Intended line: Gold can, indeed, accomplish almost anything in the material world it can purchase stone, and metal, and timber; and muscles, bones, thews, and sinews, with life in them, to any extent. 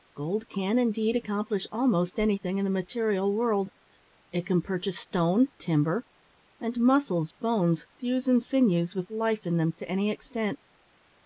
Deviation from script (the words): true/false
true